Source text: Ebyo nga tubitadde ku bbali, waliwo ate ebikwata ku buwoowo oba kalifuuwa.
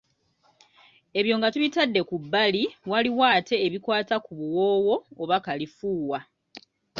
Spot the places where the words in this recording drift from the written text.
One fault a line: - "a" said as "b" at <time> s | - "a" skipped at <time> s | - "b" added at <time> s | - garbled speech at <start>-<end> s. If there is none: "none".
none